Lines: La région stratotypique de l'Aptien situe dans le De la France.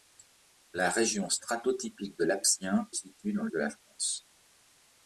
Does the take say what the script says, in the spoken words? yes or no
yes